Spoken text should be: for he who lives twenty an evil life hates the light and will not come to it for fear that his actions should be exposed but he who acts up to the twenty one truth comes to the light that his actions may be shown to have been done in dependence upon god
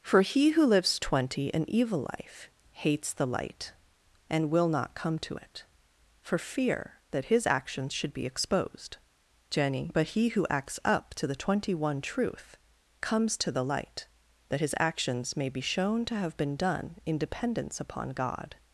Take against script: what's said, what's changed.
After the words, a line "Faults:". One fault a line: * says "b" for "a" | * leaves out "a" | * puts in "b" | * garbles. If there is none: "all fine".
for he who lives twenty an evil life hates the light and will not come to it for fear that his actions should be exposed jenny but he who acts up to the twenty one truth comes to the light that his actions may be shown to have been done in dependence upon god
Faults:
* puts in "jenny"